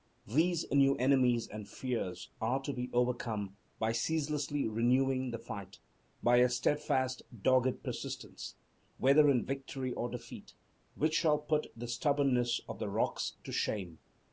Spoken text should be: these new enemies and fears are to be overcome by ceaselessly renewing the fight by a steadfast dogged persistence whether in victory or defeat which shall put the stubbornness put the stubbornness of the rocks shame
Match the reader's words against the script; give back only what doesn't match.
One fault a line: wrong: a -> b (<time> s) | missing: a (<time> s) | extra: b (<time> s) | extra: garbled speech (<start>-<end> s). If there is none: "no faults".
missing: put the stubbornness (12.6 s)
extra: to (13.4 s)